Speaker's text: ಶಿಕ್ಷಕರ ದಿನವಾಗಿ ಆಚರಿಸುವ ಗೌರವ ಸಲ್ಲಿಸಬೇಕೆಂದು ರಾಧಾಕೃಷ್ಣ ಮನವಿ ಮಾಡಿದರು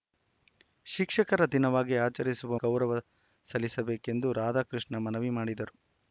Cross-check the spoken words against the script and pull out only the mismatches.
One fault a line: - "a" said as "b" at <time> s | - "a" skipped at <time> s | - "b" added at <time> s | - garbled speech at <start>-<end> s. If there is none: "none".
none